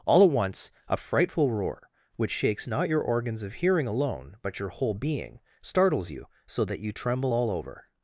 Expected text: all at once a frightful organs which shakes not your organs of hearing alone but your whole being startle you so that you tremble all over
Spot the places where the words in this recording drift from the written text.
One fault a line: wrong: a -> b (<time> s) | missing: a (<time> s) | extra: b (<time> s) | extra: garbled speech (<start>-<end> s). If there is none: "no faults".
wrong: organs -> roar (1.5 s)
wrong: startle -> startles (5.6 s)